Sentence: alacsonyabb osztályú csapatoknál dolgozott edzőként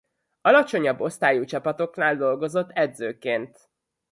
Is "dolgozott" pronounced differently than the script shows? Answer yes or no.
no